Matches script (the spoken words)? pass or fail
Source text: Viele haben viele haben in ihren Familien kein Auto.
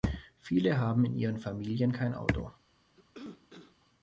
fail